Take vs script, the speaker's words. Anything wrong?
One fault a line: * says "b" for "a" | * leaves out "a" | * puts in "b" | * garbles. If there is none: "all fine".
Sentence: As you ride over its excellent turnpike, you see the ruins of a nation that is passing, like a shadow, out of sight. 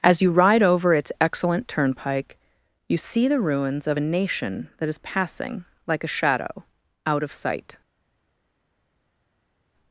all fine